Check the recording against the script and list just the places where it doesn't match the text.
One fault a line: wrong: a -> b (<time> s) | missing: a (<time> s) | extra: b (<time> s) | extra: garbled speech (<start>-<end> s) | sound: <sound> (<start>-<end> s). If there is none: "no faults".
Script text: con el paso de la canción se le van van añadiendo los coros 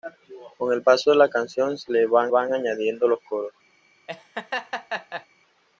sound: laugh (4.1-5.3 s)